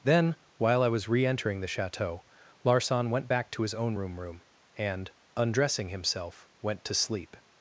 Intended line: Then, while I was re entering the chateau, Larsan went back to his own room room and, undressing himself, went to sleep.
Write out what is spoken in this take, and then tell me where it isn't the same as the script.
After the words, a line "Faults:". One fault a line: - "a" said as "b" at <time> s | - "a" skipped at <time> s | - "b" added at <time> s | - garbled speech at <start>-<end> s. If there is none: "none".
Then, while I was re entering the chateau, Larsan went back to his own room room and, undressing himself, went to sleep.
Faults:
none